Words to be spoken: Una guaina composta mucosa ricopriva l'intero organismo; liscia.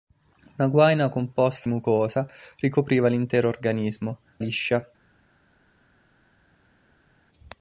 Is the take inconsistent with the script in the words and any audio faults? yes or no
no